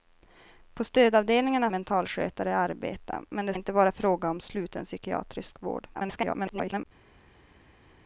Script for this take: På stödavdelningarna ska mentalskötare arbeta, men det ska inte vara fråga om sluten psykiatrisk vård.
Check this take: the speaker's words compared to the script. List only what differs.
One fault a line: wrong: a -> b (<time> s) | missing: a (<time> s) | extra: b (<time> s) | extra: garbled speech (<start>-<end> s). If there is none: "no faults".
missing: ska (1.7 s)
missing: ska (3.5 s)
extra: garbled speech (5.9-6.9 s)